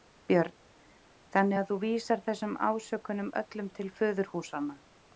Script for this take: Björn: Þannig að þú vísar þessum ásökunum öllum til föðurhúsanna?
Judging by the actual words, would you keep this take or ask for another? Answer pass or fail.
pass